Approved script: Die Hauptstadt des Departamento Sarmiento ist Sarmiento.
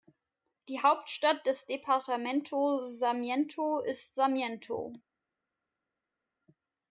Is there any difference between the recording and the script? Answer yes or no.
no